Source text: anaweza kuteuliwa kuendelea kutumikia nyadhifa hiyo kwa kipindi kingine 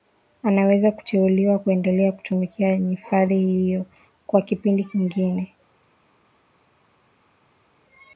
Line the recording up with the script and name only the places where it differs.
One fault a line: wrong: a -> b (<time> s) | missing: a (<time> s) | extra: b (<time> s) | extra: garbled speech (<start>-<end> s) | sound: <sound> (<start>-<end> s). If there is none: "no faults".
no faults